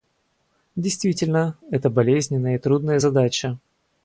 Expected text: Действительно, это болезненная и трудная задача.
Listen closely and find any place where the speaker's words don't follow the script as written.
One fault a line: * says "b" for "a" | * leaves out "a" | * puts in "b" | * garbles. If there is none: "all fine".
all fine